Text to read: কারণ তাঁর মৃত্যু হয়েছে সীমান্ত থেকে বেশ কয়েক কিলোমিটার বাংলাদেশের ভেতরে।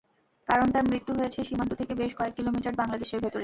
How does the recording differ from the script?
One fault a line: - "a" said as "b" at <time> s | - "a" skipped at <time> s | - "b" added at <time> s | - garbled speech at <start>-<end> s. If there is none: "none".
none